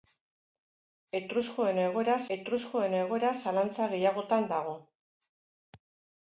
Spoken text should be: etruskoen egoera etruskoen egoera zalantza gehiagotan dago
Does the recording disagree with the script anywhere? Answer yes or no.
no